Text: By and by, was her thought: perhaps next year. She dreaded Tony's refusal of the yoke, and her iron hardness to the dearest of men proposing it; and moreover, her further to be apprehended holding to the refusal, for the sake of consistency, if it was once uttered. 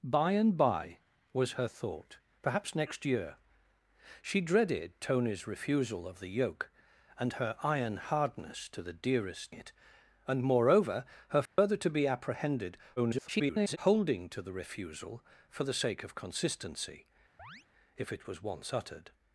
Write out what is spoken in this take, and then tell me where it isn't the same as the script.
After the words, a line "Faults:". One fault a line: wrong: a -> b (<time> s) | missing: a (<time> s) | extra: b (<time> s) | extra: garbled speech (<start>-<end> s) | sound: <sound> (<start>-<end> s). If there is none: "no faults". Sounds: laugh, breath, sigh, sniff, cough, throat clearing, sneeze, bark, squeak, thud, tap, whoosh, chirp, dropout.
By and by, was her thought: perhaps next year. She dreaded Tony's refusal of the yoke, and her iron hardness to the dearest it; and moreover, her further to be apprehended [garbled] holding to the refusal, for the sake of consistency, if it was once uttered.
Faults:
missing: of men proposing (9.6 s)
sound: dropout (11.5-11.6 s)
extra: garbled speech (13.0-13.8 s)
sound: chirp (17.4-17.7 s)